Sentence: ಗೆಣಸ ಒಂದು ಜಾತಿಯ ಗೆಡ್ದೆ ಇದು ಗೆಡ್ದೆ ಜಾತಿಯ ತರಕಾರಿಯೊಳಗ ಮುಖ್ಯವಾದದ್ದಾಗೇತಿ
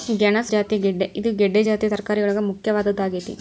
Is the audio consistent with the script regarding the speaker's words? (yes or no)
no